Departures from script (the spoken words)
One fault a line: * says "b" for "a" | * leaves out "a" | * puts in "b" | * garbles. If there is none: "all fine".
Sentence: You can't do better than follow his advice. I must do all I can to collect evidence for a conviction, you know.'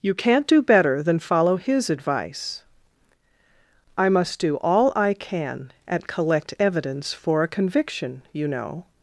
* says "at" for "to"